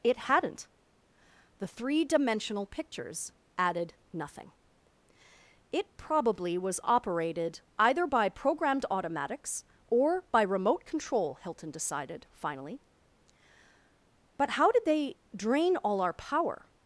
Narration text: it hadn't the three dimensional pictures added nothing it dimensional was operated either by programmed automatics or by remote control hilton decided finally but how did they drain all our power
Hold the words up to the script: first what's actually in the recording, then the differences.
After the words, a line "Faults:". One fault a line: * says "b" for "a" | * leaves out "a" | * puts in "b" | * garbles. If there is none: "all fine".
it hadn't the three dimensional pictures added nothing it probably was operated either by programmed automatics or by remote control hilton decided finally but how did they drain all our power
Faults:
* says "probably" for "dimensional"